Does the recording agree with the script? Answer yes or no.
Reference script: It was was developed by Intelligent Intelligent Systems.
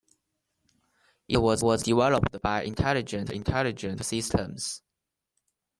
yes